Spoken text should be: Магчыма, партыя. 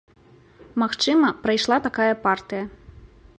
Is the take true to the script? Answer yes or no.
no